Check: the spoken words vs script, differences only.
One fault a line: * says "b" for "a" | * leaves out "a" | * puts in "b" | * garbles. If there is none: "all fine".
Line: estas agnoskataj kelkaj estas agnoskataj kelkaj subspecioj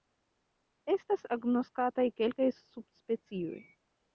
* leaves out "estas agnoskataj kelkaj"